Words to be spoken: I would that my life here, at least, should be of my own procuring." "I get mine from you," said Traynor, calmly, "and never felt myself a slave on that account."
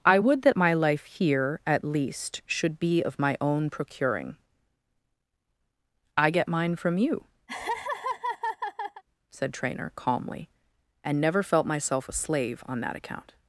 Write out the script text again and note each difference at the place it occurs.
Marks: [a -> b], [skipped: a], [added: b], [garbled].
I would that my life here, at least, should be of my own procuring." "I get mine from you," said Traynor, calmly, "and never felt myself a slave on that account."